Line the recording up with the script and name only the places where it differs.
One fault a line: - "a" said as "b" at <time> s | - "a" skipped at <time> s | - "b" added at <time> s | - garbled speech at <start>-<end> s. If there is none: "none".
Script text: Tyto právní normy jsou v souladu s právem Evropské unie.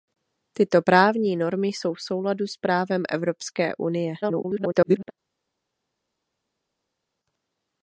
- garbled speech at 4.2-5.1 s